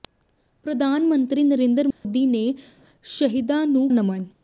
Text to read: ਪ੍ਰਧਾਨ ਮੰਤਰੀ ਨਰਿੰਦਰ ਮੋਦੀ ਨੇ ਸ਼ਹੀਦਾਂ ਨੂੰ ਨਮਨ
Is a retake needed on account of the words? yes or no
no